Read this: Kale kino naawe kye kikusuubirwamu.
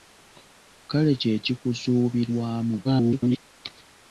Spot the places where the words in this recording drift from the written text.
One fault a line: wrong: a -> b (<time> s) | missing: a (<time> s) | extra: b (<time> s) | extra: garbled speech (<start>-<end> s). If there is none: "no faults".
missing: kino naawe (1.1 s)
extra: garbled speech (2.8-3.4 s)